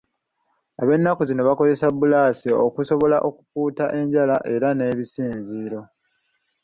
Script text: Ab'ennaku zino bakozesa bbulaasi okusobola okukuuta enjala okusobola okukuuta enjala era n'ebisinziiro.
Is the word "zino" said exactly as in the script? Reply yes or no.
yes